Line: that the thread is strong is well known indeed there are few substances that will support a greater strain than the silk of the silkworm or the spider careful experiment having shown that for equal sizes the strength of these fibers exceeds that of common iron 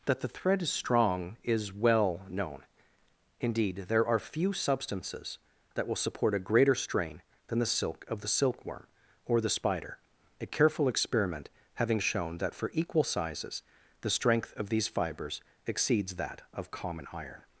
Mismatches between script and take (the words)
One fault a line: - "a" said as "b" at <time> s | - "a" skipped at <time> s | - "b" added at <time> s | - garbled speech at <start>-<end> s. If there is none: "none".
- "a" added at 10.4 s